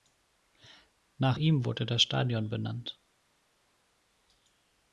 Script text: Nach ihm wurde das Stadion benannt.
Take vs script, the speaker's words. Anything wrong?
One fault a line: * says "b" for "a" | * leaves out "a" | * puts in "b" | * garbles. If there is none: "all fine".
all fine